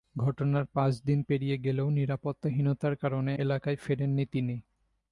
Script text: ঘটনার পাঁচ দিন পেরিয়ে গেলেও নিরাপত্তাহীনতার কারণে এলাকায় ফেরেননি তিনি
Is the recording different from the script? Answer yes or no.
no